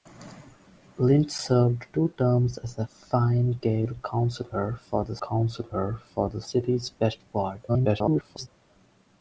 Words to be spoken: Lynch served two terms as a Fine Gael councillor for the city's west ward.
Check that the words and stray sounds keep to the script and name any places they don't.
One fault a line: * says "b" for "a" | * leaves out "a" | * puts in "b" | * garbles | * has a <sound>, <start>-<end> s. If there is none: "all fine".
* puts in "councillor for the"
* garbles